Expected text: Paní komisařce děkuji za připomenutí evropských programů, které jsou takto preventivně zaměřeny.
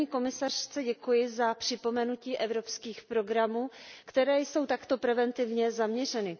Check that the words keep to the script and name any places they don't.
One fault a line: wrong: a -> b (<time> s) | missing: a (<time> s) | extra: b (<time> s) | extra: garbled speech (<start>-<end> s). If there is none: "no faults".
no faults